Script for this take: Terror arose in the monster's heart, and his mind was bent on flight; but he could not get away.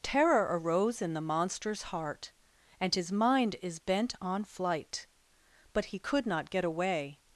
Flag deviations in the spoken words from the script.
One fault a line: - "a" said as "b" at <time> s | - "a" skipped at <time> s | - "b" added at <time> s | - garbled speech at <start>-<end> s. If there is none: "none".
- "was" said as "is" at 3.6 s